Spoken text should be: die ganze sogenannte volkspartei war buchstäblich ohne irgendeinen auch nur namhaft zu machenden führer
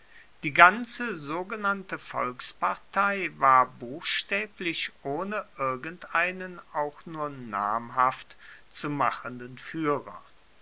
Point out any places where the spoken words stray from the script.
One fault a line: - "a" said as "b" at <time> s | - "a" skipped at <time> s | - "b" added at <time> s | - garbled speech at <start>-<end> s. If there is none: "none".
none